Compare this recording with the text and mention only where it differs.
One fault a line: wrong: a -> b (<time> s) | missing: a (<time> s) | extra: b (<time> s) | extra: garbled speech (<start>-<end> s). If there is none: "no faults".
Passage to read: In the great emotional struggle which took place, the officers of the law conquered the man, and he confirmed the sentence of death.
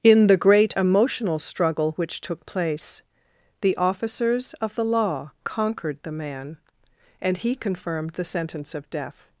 no faults